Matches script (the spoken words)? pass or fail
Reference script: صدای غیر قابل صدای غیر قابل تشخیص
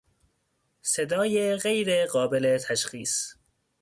fail